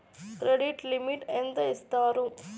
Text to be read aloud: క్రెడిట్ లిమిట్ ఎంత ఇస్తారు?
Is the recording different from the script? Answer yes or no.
no